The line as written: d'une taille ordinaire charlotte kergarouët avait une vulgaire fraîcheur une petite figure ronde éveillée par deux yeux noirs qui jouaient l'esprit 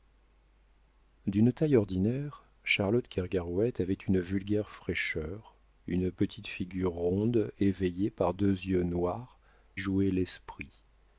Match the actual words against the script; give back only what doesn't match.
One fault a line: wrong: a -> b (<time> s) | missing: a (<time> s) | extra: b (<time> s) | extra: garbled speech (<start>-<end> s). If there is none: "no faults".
missing: qui (9.4 s)